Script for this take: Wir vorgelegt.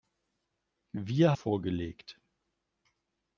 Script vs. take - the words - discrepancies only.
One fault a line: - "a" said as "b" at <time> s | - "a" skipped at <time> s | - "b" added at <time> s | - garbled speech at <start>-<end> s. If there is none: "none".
none